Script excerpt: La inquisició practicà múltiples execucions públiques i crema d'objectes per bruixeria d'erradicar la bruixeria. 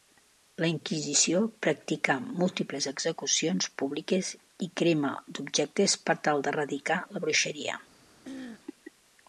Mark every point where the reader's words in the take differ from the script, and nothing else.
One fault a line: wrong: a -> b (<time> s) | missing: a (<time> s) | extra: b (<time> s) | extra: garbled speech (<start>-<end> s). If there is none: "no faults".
wrong: bruixeria -> tal (6.3 s)